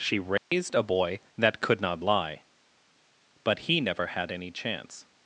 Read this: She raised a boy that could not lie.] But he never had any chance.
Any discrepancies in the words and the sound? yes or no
yes